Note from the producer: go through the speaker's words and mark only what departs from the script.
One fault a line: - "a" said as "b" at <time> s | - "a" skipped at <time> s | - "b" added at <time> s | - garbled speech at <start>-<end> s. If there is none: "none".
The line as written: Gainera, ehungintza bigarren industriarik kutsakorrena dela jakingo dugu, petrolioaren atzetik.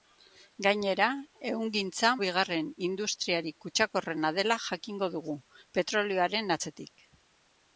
none